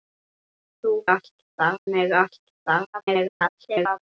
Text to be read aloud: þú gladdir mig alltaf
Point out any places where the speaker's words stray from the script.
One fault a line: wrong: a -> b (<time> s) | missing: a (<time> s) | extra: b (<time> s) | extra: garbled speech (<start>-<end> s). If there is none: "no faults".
wrong: gladdir -> alltaf (1.1 s)
extra: garbled speech (2.9-4.0 s)